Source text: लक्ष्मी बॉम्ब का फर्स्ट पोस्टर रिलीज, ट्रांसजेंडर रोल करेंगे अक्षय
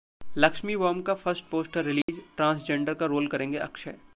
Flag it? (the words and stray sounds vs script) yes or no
yes